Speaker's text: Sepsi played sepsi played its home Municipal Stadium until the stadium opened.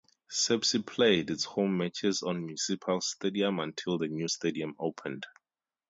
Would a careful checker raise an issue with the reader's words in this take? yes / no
yes